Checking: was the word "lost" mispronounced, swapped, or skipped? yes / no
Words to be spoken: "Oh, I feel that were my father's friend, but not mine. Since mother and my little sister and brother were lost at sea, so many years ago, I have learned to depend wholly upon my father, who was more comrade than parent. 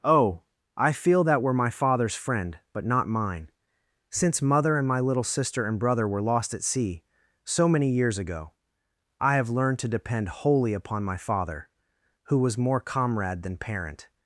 no